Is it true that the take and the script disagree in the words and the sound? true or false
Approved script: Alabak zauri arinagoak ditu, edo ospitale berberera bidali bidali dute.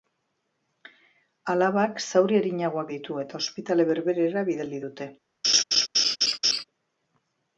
true